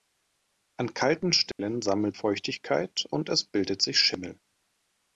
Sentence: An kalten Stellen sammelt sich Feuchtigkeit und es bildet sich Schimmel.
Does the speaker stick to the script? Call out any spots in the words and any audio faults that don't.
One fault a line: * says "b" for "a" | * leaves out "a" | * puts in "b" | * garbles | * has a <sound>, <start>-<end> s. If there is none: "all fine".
* has a dropout, 1.5-1.6 s
* leaves out "sich"